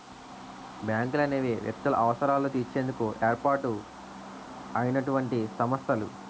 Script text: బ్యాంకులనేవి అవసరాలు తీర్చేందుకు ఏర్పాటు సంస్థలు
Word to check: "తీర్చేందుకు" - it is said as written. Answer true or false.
true